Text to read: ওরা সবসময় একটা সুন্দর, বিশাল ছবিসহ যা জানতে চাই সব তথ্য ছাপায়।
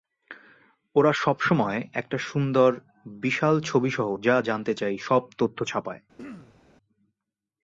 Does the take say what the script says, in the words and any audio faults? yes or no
no